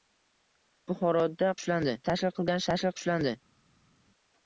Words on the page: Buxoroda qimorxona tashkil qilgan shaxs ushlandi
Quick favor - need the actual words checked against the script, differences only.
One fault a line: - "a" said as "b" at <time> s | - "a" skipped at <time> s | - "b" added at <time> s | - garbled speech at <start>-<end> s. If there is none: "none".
- "qimorxona" said as "ushlandi" at 1.6 s
- "shaxs" said as "tashkil" at 2.7 s